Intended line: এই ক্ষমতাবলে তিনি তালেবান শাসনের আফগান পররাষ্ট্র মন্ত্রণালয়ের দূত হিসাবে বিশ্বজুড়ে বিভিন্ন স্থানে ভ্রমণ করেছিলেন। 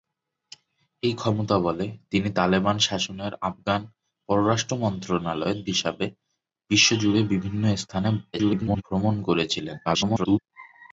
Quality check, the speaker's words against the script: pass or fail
fail